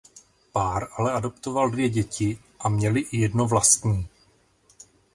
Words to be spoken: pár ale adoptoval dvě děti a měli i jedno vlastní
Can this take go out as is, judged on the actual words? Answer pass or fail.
pass